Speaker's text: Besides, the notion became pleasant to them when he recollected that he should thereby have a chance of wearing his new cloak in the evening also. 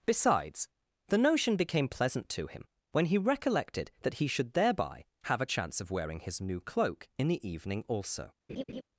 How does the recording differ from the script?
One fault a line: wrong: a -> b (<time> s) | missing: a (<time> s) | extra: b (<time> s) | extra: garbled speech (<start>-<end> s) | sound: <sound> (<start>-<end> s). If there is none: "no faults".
wrong: them -> him (2.5 s)
sound: laugh (8.5-8.8 s)